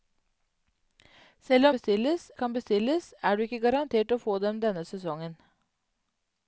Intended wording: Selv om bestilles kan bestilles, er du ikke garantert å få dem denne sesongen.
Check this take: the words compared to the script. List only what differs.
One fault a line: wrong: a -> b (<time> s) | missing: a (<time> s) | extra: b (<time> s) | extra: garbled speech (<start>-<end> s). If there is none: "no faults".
no faults